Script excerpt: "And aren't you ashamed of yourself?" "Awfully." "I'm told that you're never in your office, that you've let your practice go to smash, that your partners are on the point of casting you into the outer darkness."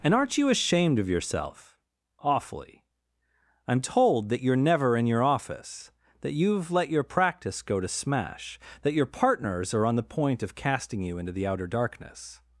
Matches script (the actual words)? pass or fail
pass